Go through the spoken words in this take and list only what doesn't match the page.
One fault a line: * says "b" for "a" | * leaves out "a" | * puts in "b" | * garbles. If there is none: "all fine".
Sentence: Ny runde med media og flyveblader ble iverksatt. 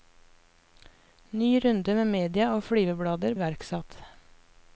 * leaves out "ble"